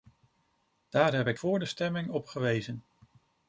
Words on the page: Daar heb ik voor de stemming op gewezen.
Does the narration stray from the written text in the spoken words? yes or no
no